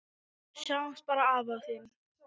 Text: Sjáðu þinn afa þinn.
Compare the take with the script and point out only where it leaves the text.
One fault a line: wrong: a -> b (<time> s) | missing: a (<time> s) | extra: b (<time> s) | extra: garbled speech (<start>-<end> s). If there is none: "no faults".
wrong: þinn -> bara (1.1 s)